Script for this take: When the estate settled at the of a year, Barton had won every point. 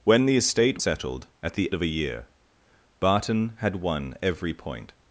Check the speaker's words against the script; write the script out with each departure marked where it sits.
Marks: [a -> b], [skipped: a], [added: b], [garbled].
When the estate settled at the of a year, Barton had won every point.